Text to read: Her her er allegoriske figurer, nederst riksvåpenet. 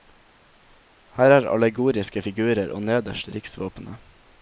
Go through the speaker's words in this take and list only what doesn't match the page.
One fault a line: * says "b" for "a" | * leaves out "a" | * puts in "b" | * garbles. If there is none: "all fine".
* leaves out "her"
* puts in "og"